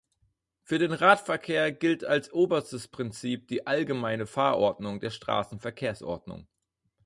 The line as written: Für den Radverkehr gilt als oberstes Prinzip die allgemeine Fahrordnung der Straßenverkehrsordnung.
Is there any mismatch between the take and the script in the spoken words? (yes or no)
no